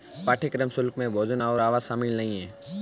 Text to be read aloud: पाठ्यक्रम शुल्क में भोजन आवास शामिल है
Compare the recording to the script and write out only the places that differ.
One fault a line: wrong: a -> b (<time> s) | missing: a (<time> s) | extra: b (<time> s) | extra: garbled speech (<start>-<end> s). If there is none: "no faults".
extra: और (1.4 s)
extra: नहीं (2.2 s)